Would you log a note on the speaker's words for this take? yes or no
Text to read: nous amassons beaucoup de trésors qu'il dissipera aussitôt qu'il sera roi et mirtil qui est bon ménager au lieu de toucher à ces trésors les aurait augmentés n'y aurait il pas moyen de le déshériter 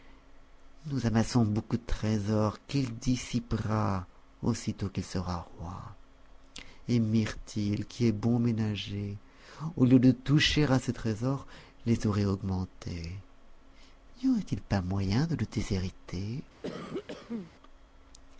no